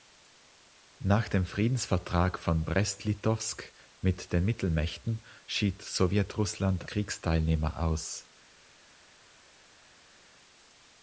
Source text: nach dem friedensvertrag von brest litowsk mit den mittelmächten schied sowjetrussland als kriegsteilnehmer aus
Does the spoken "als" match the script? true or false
false